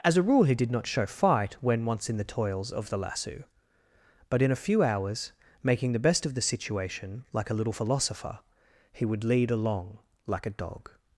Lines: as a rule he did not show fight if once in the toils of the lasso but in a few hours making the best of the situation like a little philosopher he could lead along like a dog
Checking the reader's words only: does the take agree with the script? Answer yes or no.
no